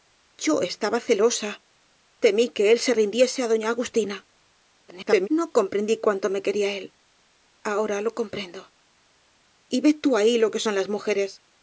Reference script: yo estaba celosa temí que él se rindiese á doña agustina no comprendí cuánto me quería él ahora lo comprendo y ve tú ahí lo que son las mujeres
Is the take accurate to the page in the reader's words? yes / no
no